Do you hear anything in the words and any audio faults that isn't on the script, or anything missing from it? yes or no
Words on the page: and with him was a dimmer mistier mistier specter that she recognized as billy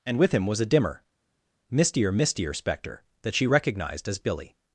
no